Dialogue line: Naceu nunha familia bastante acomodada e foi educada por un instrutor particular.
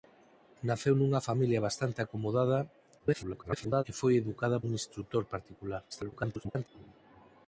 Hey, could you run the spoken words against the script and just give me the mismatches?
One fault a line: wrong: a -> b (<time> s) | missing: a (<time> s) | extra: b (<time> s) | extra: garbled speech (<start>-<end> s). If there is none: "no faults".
extra: garbled speech (3.0-3.8 s)
missing: por (4.6 s)
extra: garbled speech (5.9-6.7 s)